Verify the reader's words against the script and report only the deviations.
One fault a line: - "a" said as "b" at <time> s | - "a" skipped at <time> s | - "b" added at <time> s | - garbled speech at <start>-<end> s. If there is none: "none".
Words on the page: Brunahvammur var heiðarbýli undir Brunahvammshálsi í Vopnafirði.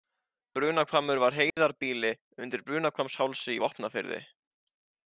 none